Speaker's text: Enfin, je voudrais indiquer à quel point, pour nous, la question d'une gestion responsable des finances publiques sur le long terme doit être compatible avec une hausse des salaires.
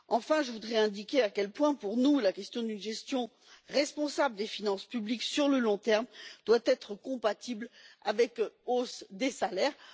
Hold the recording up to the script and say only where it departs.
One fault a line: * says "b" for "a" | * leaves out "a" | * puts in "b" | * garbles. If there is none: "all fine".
* leaves out "une"